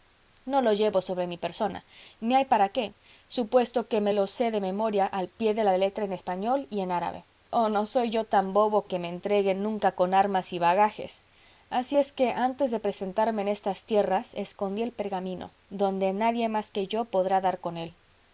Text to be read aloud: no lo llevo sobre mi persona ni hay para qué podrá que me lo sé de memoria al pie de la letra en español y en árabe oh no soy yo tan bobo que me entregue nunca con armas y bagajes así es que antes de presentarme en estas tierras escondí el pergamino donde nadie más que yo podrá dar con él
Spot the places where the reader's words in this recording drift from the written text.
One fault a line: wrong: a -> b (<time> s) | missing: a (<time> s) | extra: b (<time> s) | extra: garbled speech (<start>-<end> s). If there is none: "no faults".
wrong: podrá -> supuesto (3.3 s)